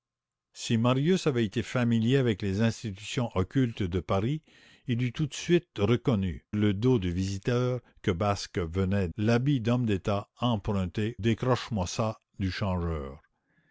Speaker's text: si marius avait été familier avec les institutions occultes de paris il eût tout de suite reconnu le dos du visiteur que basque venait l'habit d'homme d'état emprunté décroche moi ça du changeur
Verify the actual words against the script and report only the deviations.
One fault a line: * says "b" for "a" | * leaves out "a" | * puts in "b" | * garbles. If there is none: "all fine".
all fine